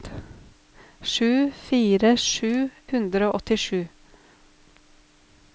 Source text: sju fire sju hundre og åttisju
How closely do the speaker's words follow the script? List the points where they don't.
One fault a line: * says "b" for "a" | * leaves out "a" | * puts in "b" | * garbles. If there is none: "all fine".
all fine